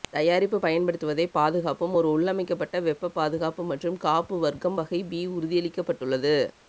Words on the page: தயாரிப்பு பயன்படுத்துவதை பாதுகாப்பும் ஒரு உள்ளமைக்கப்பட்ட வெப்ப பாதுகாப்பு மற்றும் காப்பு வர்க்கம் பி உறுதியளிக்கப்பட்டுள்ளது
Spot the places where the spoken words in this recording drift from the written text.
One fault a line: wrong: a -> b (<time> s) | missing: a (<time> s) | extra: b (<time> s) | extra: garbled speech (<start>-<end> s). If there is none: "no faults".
extra: வகை (4.8 s)